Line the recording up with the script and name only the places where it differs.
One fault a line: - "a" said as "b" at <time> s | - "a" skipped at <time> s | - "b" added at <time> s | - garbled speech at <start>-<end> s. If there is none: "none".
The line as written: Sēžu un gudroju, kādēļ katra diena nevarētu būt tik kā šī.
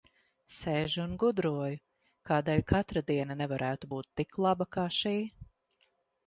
- "laba" added at 4.5 s